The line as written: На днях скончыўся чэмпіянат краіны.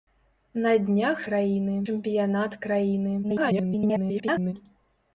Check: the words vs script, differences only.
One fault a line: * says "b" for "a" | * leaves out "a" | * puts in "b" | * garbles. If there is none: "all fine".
* says "краіны" for "скончыўся"
* garbles